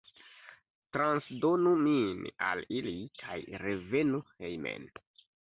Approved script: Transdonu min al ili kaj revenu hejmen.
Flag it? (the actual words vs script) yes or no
no